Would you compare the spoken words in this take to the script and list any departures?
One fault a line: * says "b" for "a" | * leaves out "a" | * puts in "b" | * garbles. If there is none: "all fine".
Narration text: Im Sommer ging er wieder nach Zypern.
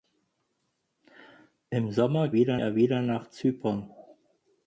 * says "wieder" for "ging"